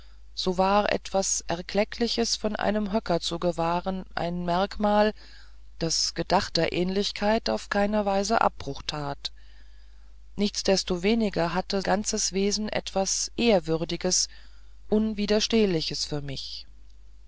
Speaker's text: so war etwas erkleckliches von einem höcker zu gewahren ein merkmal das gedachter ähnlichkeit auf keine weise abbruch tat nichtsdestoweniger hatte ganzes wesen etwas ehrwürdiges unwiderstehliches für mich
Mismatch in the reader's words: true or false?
false